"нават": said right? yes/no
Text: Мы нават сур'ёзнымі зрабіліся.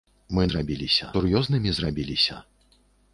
no